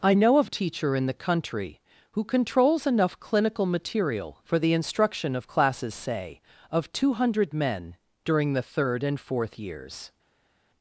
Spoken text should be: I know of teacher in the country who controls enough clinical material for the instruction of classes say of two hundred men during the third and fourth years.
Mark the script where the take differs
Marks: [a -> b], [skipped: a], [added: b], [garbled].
I know of teacher in the country who controls enough clinical material for the instruction of classes say of two hundred men during the third and fourth years.